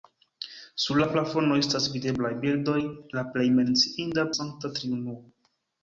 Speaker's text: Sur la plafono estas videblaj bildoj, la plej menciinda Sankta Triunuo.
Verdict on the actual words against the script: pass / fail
pass